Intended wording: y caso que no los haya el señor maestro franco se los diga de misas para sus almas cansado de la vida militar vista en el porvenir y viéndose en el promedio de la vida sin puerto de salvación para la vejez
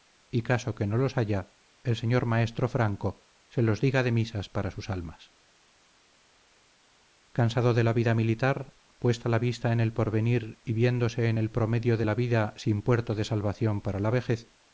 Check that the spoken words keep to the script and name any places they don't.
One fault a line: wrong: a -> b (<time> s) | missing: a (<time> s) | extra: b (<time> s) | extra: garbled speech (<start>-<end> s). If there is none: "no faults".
extra: puesta la (9.0 s)